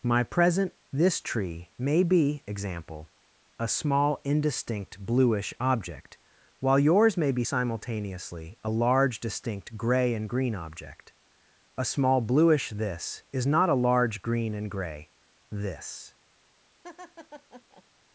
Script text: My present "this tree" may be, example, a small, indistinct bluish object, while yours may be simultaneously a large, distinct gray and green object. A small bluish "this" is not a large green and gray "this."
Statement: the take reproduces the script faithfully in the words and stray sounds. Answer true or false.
false